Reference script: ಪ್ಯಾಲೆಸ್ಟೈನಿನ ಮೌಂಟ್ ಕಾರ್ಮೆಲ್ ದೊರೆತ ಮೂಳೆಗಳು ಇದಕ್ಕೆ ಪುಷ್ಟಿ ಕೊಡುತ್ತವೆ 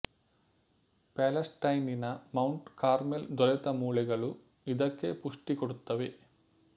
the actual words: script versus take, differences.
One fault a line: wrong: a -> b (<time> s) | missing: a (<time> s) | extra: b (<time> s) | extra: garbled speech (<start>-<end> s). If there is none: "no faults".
no faults